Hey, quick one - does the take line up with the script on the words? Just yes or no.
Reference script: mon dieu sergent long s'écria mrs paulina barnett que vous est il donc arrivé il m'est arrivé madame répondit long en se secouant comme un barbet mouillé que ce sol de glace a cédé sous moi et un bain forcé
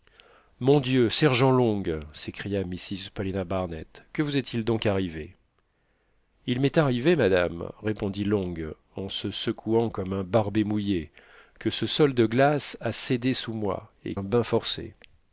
yes